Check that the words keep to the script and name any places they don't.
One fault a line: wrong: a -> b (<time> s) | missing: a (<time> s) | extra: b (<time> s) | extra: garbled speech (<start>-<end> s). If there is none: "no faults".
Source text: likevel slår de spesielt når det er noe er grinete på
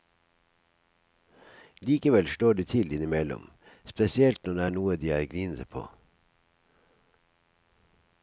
extra: til innimellom (2.6 s)
extra: de (5.0 s)